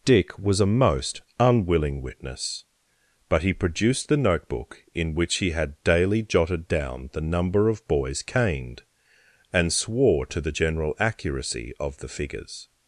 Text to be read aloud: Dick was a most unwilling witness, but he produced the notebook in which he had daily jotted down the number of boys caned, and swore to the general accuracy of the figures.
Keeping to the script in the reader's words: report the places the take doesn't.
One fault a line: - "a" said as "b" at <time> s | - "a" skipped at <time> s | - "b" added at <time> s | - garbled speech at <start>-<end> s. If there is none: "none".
none